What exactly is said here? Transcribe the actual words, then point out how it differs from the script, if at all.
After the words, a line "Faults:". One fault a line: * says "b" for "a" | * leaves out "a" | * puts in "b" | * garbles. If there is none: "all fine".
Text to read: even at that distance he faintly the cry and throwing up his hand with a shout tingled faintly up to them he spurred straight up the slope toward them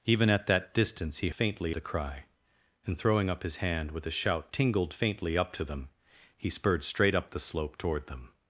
even at that distance he faintly the cry and throwing up his hand with a shout tingled faintly up to them he spurred straight up the slope toward them
Faults:
all fine